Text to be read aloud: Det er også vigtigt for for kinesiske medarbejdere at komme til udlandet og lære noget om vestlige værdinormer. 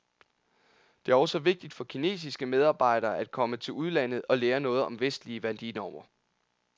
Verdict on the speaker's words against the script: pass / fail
fail